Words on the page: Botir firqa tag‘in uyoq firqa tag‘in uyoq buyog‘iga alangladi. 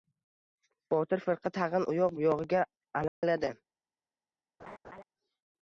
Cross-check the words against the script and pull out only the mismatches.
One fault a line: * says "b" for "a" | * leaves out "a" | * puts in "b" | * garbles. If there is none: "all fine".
* leaves out "firqa tag‘in uyoq"